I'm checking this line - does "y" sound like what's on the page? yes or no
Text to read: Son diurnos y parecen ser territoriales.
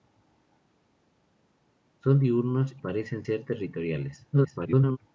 no